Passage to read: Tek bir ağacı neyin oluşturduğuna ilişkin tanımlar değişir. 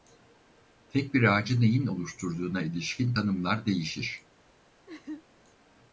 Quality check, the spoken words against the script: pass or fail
pass